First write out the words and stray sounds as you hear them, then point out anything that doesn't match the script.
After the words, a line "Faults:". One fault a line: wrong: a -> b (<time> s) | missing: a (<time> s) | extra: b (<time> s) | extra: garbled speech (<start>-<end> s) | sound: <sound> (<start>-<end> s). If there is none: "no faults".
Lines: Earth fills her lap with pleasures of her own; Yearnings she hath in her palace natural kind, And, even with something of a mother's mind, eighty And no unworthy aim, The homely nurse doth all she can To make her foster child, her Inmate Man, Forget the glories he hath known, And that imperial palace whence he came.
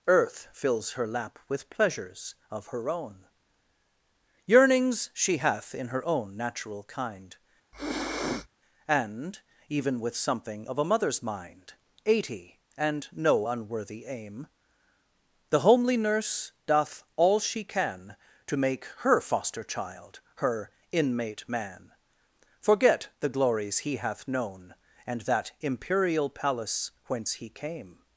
Earth fills her lap with pleasures of her own; Yearnings she hath in her own natural kind, And, even with something of a mother's mind, eighty And no unworthy aim, The homely nurse doth all she can To make her foster child, her Inmate Man, Forget the glories he hath known, And that imperial palace whence he came.
Faults:
wrong: palace -> own (6.0 s)
sound: sniff (7.7-8.5 s)